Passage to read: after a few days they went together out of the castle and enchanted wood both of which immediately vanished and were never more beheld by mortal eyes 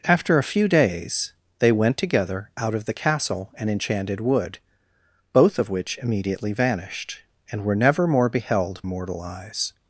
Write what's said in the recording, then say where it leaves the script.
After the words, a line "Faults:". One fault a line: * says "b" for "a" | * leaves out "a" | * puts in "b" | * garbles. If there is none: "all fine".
after a few days they went together out of the castle and enchanted wood both of which immediately vanished and were never more beheld mortal eyes
Faults:
* leaves out "by"